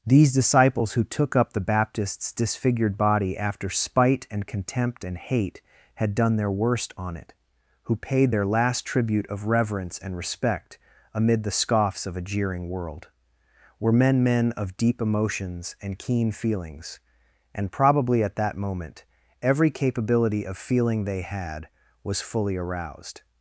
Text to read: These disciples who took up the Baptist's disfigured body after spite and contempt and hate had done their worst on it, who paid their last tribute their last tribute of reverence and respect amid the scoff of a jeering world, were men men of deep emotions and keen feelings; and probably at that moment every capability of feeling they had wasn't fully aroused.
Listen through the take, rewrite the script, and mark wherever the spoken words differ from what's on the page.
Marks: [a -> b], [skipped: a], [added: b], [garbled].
These disciples who took up the Baptist's disfigured body after spite and contempt and hate had done their worst on it, who paid their last tribute [skipped: their last tribute] of reverence and respect amid the [scoff -> scoffs] of a jeering world, were men men of deep emotions and keen feelings; and probably at that moment every capability of feeling they had [wasn't -> was] fully aroused.